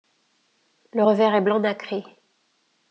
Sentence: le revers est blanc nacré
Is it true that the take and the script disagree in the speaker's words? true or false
false